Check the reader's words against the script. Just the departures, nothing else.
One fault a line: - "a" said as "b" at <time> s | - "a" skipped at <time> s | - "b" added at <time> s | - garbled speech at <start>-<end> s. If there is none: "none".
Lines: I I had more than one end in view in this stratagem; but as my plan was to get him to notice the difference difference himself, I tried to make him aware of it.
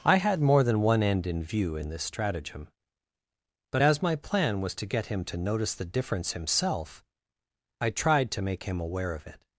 - "I" skipped at 0.2 s
- "difference" skipped at 6.3 s